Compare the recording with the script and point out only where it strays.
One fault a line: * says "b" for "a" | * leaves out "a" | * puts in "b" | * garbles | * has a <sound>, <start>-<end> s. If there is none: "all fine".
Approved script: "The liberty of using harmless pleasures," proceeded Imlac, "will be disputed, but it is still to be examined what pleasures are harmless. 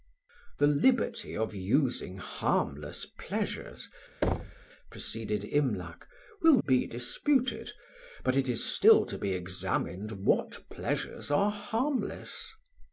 * has a thud, 4.2-4.7 s